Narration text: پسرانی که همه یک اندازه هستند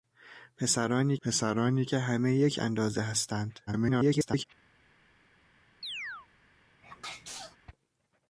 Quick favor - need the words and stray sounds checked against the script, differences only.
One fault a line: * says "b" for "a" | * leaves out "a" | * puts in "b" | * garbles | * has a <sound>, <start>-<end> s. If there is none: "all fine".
* puts in "پسرانی"
* garbles
* has a chirp, 5.8-6.3 s
* has a sneeze, 6.8-7.6 s